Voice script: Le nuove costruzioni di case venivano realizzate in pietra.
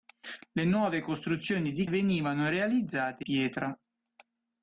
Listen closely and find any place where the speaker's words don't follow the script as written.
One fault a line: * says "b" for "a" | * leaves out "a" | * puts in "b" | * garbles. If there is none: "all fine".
* leaves out "case"
* leaves out "in"